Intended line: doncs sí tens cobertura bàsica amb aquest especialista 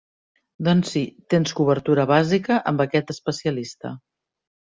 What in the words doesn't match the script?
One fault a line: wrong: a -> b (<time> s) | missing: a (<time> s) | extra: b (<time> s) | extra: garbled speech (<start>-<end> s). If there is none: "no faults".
no faults